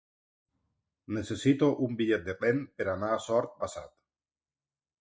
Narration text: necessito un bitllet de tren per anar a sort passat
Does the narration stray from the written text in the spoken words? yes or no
no